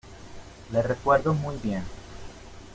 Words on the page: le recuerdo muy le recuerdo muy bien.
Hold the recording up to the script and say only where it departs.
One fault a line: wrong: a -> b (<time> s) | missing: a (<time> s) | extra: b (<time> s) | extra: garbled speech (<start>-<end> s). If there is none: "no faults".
missing: le recuerdo muy (1.6 s)